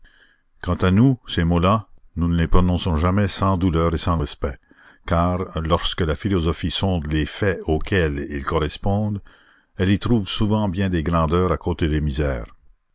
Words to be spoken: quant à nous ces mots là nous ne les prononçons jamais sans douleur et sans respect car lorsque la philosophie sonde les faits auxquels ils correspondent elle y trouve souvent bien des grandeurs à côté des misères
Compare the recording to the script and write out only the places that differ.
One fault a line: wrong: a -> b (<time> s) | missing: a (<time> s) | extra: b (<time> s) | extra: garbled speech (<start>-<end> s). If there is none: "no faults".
no faults